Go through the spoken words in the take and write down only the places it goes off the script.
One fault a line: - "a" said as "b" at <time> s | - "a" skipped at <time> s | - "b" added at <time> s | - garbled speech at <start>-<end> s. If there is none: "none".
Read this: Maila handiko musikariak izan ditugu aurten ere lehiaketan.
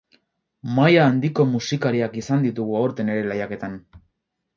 none